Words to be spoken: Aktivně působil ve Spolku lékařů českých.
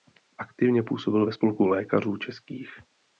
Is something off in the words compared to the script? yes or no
no